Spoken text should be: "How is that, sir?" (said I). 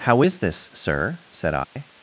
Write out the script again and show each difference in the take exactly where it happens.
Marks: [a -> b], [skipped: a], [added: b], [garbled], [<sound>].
"How is [that, -> this] sir?" (said I). [dropout]